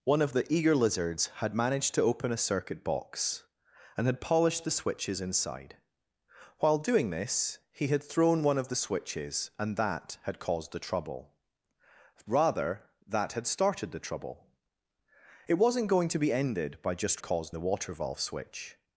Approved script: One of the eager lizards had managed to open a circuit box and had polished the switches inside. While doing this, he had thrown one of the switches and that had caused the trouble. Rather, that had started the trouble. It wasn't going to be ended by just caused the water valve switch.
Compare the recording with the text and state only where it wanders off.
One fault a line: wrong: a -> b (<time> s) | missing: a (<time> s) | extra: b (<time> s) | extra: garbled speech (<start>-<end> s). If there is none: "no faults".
no faults